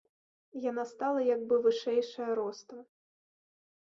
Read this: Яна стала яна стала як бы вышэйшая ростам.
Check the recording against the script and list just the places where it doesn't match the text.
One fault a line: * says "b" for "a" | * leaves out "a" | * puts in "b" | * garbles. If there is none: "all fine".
* leaves out "яна стала"